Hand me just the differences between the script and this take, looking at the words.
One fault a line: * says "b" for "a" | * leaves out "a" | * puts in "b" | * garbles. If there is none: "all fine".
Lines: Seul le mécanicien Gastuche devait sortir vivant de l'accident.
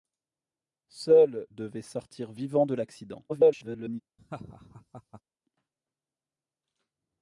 * leaves out "le mécanicien Gastuche"
* garbles